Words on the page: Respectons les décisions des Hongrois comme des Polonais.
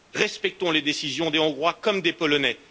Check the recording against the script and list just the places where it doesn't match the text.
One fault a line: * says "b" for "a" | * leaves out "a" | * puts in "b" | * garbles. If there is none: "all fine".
all fine